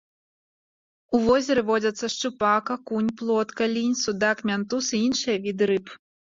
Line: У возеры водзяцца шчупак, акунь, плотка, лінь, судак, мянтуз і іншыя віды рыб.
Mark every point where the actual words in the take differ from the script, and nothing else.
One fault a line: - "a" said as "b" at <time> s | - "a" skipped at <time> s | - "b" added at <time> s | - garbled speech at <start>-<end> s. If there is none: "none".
none